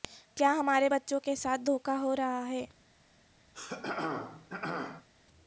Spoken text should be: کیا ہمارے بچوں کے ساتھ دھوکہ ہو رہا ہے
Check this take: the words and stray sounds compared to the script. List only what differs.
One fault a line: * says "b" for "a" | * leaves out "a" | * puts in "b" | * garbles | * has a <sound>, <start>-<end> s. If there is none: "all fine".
* has a throat clearing, 3.5-5.1 s